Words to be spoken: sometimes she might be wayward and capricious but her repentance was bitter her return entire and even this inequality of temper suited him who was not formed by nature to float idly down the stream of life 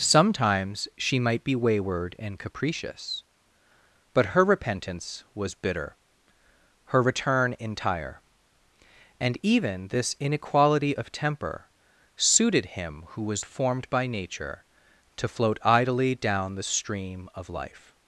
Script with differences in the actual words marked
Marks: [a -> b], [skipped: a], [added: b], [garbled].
sometimes she might be wayward and capricious but her repentance was bitter her return entire and even this inequality of temper suited him who was [skipped: not] formed by nature to float idly down the stream of life